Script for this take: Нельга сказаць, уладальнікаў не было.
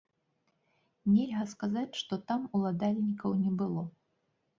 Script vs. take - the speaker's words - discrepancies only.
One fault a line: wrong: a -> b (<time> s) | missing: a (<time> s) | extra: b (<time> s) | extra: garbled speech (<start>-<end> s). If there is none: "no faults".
extra: што там (2.0 s)